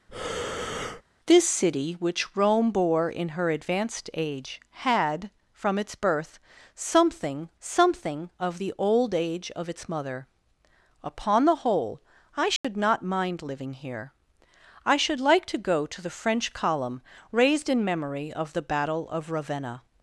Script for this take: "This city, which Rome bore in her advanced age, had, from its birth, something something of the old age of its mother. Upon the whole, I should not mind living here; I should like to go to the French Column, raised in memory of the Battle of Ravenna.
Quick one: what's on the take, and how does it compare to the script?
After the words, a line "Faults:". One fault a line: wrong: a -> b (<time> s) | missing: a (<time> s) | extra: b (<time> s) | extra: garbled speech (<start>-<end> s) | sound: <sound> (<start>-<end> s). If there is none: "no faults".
"This city, which Rome bore in her advanced age, had, from its birth, something something of the old age of its mother. Upon the whole, I should not mind living here; I should like to go to the French Column, raised in memory of the Battle of Ravenna.
Faults:
sound: breath (0.1-1.0 s)
sound: dropout (12.6-12.6 s)